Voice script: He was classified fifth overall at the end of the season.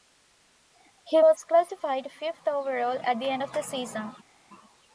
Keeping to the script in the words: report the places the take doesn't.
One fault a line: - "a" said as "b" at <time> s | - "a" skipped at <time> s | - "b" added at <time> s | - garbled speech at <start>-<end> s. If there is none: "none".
none